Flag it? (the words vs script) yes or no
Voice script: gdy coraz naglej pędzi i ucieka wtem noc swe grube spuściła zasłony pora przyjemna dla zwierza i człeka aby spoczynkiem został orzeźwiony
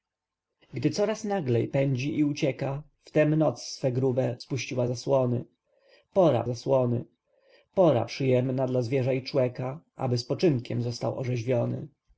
yes